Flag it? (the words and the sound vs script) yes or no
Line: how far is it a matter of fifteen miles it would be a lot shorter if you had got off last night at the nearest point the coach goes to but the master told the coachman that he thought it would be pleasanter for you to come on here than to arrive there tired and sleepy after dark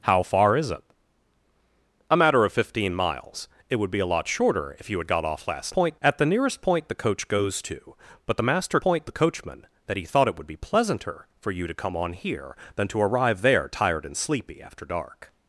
yes